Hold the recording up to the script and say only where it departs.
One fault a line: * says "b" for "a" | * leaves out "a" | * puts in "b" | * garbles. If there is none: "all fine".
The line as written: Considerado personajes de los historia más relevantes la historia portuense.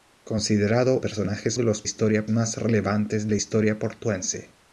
all fine